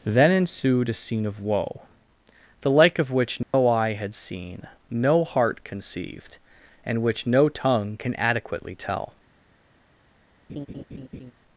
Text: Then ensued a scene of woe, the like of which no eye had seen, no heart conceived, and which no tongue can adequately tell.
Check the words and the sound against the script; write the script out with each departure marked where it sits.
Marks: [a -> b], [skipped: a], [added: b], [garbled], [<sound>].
Then ensued a scene of woe, the like of which no [dropout] eye had seen, no heart conceived, and which no tongue can adequately tell. [laugh]